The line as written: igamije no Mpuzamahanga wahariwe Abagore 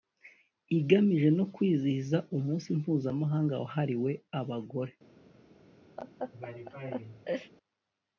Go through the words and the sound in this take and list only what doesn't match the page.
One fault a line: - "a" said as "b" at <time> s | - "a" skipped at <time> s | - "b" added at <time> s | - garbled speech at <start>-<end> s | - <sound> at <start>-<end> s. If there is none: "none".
- "kwizihiza Umunsi" added at 1.5 s
- laugh at 6.0-7.5 s